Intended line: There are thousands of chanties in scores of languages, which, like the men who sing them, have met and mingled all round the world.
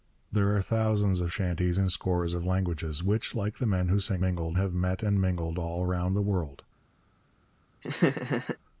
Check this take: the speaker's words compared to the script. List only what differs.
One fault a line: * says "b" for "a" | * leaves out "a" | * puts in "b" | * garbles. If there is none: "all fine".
* says "mingled" for "them"